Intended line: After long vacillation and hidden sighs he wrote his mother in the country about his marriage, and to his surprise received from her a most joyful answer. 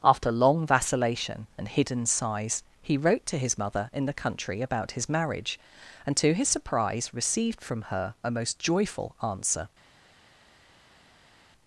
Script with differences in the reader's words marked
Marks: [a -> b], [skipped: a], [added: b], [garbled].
After long vacillation and hidden sighs he wrote [added: to] his mother in the country about his marriage, and to his surprise received from her a most joyful answer.